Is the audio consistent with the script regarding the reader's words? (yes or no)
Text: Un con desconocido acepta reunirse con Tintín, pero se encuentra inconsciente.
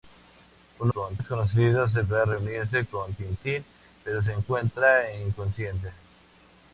yes